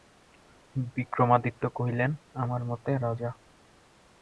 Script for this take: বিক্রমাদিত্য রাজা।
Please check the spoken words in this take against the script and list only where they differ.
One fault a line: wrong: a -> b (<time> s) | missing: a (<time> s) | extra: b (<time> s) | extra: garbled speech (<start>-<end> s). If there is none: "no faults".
extra: কহিলেন আমার মতে (1.7 s)